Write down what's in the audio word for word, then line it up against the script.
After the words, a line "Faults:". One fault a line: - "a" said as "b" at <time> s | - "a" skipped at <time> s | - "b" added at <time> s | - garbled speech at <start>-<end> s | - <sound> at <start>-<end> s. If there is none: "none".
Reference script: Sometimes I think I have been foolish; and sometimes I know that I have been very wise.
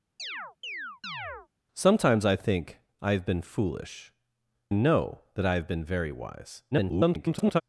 Sometimes I think I have been foolish; know that I have been very wise. [garbled]
Faults:
- chirp at 0.2-1.5 s
- "and sometimes I" skipped at 4.1 s
- garbled speech at 6.7-7.6 s